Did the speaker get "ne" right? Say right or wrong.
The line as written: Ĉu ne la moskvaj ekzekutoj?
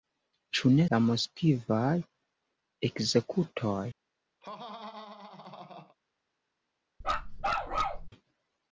right